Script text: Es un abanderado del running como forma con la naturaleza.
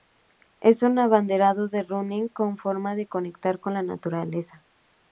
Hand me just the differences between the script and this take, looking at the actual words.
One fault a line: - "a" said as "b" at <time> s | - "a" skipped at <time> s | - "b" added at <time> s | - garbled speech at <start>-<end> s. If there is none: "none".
- "de conectar" added at 2.9 s